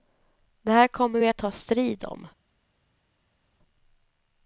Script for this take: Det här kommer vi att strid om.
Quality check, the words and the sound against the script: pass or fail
fail